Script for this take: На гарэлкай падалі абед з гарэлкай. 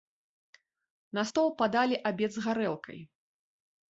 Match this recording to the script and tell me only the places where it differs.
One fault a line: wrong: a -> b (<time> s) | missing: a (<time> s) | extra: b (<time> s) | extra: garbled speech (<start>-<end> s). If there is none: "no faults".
wrong: гарэлкай -> стол (1.3 s)